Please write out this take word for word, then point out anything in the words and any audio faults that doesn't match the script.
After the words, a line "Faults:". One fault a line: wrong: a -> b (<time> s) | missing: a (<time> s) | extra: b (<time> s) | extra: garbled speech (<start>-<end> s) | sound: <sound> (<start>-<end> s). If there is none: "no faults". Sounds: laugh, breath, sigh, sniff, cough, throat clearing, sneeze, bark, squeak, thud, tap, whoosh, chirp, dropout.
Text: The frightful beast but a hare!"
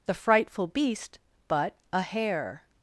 The frightful beast but a hare!"
Faults:
no faults